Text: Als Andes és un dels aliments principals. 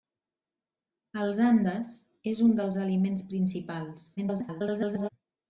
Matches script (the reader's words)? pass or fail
fail